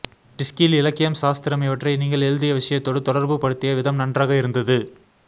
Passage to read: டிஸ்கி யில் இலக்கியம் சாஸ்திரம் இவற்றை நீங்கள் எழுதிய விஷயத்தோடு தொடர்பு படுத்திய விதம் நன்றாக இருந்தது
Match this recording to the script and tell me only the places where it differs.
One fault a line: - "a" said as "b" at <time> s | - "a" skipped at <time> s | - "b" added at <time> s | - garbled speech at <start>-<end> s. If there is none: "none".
none